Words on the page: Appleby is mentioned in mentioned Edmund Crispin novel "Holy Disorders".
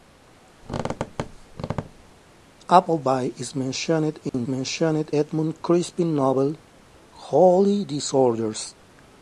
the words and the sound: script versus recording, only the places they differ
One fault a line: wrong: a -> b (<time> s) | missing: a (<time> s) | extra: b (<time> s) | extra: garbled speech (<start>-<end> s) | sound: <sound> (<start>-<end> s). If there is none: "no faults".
sound: squeak (0.6-2.1 s)
sound: dropout (4.3-4.3 s)